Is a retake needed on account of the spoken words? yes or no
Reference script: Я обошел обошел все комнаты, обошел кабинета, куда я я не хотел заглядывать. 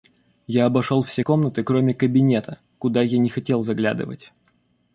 yes